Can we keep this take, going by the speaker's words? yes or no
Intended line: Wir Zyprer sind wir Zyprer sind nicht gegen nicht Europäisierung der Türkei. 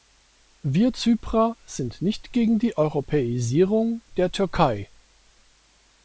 no